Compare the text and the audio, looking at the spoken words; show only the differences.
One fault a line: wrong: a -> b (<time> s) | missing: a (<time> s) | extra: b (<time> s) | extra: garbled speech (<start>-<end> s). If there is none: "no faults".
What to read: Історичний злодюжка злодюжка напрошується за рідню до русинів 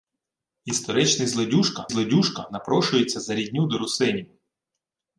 no faults